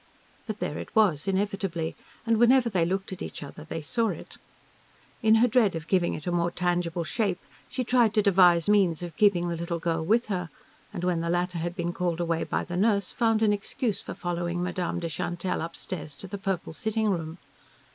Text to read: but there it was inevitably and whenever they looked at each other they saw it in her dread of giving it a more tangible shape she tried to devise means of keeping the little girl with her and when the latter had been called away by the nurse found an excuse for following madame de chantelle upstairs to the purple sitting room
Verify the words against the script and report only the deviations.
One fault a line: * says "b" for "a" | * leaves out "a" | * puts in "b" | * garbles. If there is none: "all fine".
all fine